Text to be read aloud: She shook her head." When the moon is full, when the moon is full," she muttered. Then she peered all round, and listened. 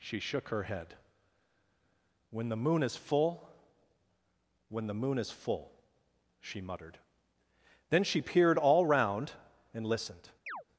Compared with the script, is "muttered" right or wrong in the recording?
right